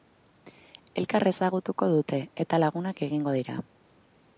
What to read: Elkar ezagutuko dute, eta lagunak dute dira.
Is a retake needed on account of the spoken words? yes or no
yes